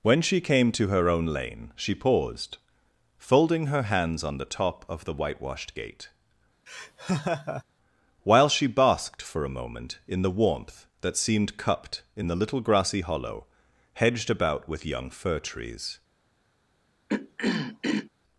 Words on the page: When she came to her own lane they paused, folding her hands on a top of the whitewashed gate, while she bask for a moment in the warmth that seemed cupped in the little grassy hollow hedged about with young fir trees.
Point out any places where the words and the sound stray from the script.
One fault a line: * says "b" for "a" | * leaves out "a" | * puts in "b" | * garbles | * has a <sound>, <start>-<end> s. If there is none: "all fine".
* says "she" for "they"
* says "the" for "a"
* has a laugh, 6.7-7.6 s
* says "basked" for "bask"
* has a throat clearing, 17.1-18.1 s